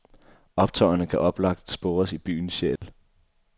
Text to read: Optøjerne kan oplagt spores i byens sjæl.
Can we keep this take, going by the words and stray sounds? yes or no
no